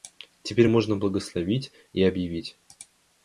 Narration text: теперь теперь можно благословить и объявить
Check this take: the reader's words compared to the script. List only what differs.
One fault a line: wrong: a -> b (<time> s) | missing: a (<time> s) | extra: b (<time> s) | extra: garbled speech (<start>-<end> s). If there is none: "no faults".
missing: теперь (0.7 s)